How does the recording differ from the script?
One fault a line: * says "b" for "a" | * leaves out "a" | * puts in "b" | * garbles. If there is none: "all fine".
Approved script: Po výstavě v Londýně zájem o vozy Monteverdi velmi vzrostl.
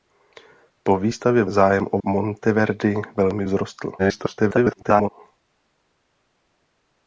* leaves out "Londýně"
* leaves out "vozy"
* garbles